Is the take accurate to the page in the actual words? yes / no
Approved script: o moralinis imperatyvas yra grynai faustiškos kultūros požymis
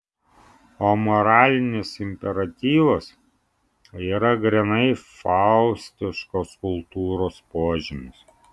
yes